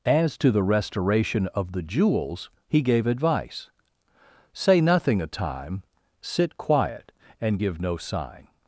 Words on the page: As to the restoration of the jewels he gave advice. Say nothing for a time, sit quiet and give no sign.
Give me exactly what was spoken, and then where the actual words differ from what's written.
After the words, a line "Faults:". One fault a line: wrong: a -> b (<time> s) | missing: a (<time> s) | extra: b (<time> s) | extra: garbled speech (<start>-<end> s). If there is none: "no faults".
As to the restoration of the jewels he gave advice. Say nothing a time, sit quiet and give no sign.
Faults:
missing: for (5.2 s)